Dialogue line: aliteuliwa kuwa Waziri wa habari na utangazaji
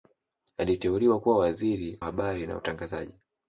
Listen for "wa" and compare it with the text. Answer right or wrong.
wrong